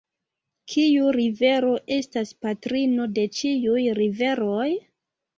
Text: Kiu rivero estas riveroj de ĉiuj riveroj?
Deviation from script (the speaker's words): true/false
true